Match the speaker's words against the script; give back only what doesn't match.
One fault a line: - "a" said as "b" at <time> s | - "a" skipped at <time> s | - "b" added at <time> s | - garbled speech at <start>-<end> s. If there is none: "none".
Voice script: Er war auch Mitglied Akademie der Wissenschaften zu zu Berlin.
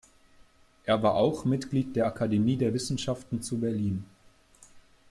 - "der" added at 1.9 s
- "zu" skipped at 3.6 s